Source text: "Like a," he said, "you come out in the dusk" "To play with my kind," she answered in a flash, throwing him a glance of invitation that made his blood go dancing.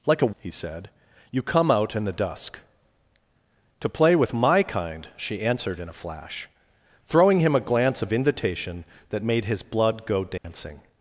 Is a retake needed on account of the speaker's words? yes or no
no